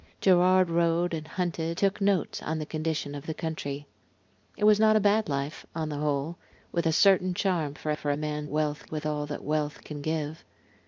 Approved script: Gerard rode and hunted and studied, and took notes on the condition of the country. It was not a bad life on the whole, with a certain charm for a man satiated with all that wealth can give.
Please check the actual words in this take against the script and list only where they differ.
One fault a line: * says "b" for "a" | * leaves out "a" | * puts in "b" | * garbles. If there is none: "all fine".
* leaves out "and studied and"
* puts in "for"
* says "wealth" for "satiated"